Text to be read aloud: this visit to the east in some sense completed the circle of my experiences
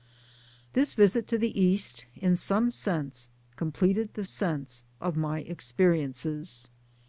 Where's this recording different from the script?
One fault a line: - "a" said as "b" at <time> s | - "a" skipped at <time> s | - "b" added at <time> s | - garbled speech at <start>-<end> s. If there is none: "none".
- "circle" said as "sense" at 4.3 s